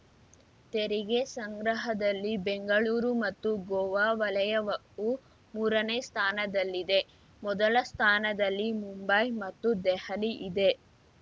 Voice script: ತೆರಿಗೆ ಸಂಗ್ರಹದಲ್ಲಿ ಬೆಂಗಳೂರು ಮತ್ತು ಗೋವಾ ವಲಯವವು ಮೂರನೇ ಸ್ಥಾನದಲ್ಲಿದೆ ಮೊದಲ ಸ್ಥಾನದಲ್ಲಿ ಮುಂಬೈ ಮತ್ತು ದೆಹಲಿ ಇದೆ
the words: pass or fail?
pass